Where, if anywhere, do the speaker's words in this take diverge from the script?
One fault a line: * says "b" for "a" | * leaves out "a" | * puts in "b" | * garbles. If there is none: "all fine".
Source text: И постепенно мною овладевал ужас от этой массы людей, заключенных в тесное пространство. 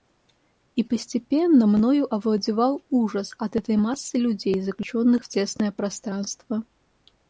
all fine